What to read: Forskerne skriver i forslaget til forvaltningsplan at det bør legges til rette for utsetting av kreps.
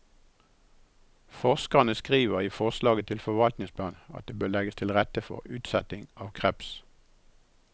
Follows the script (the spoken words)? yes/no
yes